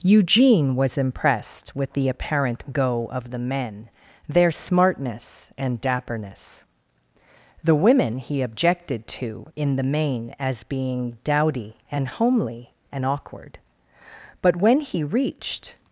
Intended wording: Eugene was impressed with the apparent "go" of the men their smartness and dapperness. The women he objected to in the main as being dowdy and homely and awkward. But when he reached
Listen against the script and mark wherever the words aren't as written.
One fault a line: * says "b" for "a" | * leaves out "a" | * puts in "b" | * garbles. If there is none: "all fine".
all fine